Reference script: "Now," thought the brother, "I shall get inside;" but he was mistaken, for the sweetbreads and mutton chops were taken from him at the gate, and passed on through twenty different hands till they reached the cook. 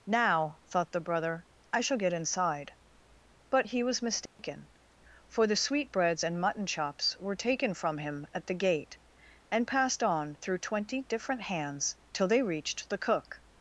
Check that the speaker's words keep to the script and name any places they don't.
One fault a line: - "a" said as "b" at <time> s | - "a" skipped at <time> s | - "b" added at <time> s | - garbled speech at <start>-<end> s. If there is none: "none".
none